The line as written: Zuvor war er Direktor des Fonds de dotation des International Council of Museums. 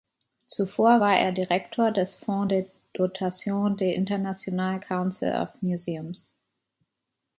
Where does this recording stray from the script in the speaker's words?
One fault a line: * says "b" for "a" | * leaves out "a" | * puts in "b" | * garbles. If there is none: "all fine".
all fine